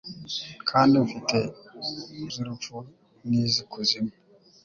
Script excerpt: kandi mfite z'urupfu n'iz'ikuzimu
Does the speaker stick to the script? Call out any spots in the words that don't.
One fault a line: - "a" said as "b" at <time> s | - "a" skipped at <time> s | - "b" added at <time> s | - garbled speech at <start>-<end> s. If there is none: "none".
none